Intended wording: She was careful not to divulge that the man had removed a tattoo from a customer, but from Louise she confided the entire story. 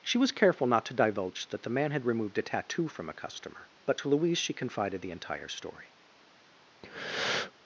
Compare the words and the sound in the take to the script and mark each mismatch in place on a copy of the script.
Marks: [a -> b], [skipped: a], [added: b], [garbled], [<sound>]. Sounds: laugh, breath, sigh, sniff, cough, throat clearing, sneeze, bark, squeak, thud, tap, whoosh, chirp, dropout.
She was careful not to divulge that the man had removed a tattoo from a customer, but [from -> to] Louise she confided the entire story. [breath]